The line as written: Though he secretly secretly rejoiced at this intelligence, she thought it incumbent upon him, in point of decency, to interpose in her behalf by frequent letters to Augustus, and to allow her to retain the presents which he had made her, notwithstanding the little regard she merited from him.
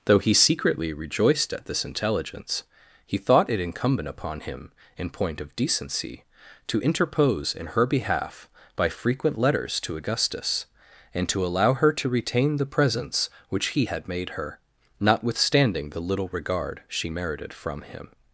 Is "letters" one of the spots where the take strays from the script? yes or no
no